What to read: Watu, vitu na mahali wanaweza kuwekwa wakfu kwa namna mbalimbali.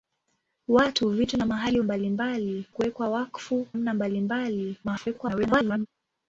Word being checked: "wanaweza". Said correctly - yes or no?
no